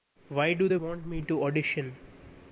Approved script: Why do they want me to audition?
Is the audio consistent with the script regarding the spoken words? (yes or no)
yes